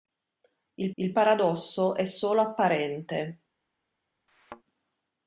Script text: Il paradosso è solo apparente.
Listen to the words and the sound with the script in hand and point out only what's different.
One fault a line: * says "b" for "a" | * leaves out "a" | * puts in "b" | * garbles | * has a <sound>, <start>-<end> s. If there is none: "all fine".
* puts in "il"
* has a thud, 4.3-4.6 s